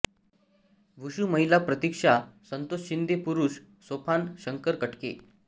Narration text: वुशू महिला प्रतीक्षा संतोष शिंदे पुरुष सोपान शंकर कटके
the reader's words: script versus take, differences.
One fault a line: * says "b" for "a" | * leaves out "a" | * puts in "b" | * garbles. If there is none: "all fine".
all fine